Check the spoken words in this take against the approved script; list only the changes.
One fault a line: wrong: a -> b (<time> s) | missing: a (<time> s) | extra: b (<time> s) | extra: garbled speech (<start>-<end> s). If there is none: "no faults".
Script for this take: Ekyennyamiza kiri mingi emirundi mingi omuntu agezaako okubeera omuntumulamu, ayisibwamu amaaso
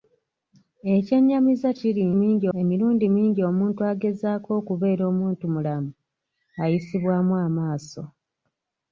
no faults